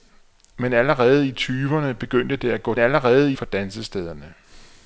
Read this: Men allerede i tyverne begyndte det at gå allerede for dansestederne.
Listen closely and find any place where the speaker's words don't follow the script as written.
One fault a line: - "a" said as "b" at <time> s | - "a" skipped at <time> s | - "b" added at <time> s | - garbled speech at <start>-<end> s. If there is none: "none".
none